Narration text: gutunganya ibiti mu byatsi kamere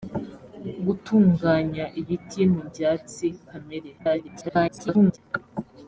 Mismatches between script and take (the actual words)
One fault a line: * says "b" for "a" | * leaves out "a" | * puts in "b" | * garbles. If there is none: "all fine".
* garbles